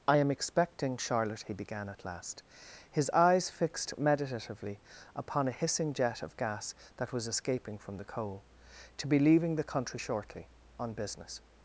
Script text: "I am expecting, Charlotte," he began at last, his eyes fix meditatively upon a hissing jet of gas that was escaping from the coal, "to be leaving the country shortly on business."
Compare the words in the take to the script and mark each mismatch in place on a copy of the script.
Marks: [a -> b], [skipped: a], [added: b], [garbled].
"I am expecting, Charlotte," he began at last, his eyes [fix -> fixed] meditatively upon a hissing jet of gas that was escaping from the coal, "to be leaving the country shortly on business."